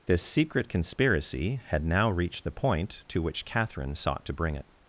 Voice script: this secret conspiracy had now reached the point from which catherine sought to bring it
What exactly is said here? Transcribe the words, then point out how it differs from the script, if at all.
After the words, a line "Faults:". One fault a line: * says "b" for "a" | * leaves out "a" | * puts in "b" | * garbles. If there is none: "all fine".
this secret conspiracy had now reached the point to which catherine sought to bring it
Faults:
* says "to" for "from"